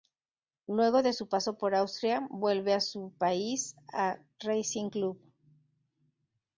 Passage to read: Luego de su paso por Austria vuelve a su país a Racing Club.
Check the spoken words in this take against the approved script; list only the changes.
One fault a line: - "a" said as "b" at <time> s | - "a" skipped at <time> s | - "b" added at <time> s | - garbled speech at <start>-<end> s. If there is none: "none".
none